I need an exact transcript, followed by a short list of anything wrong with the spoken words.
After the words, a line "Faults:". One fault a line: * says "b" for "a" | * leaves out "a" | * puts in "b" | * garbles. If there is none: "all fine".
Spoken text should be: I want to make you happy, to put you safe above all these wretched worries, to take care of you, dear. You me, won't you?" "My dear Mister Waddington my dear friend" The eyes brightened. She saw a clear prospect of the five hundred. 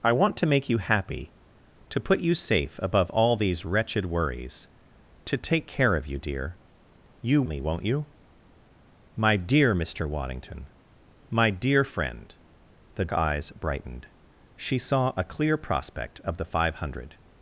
I want to make you happy, to put you safe above all these wretched worries, to take care of you, dear. You me, won't you?" "My dear Mister Waddington my dear friend" The eyes brightened. She saw a clear prospect of the five hundred.
Faults:
all fine